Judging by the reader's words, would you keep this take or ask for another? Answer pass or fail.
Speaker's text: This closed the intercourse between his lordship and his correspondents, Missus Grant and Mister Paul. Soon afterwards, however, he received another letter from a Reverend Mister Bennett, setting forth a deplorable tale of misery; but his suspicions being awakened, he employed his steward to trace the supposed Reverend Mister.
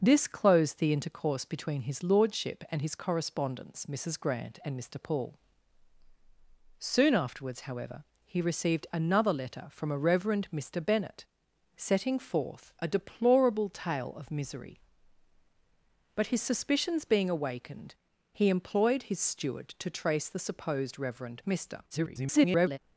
fail